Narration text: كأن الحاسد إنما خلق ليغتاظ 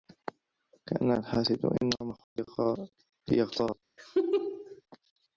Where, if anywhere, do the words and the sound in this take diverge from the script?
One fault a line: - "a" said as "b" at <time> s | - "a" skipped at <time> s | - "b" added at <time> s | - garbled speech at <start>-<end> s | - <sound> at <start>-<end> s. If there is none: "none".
- dropout at 2.2-2.4 s
- laugh at 4.0-4.8 s